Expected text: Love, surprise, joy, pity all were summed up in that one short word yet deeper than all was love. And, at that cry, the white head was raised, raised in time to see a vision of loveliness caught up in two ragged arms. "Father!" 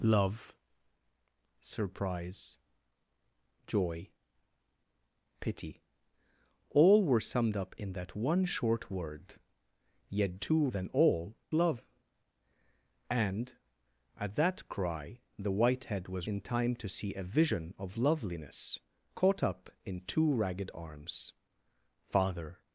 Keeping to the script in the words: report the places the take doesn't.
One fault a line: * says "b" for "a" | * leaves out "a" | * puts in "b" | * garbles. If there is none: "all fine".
* says "two" for "deeper"
* leaves out "was"
* leaves out "raised raised"